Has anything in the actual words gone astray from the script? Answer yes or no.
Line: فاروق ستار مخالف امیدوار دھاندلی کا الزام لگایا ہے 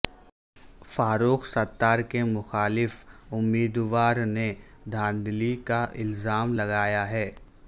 yes